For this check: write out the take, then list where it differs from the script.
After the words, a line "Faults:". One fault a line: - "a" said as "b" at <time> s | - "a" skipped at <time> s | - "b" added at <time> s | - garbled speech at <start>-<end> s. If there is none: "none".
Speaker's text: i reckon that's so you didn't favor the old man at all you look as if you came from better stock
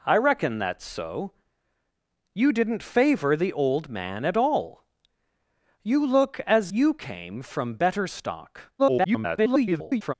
i reckon that's so you didn't favor the old man at all you look as you came from better stock [garbled]
Faults:
- "if" skipped at 6.7 s
- garbled speech at 8.8-10.1 s